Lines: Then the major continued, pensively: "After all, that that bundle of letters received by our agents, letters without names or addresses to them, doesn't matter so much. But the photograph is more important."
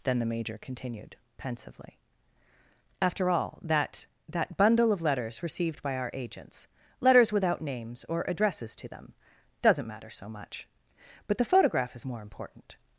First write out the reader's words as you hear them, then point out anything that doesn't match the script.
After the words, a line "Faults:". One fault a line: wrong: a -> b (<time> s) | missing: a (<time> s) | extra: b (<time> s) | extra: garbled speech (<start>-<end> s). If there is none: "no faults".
Then the major continued, pensively: "After all, that that bundle of letters received by our agents, letters without names or addresses to them, doesn't matter so much. But the photograph is more important."
Faults:
no faults